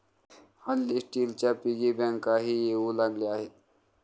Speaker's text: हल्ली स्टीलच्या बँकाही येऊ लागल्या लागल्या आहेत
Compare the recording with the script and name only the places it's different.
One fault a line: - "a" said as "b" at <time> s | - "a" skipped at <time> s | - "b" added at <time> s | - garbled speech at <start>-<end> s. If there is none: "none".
- "पिगी" added at 1.6 s
- "लागल्या" skipped at 3.3 s